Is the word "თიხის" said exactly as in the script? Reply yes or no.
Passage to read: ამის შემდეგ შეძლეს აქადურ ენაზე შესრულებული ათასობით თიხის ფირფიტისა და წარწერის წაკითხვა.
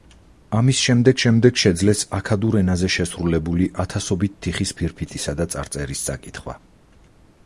yes